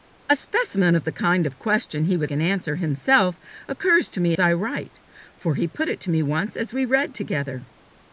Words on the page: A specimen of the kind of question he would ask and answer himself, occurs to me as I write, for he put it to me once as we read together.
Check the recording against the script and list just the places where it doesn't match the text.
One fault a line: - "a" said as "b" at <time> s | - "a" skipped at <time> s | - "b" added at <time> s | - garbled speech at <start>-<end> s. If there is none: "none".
- "ask" skipped at 2.3 s
- "as" skipped at 4.3 s